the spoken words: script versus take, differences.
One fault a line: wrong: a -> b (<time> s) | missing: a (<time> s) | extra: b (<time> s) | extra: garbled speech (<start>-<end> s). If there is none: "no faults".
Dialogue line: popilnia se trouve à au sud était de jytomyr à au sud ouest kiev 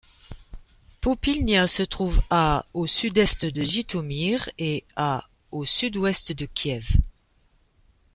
wrong: était -> est (3.2 s)
extra: et (4.6 s)
extra: de (6.3 s)